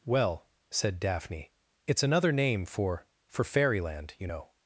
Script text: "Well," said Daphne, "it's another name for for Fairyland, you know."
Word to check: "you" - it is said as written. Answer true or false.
true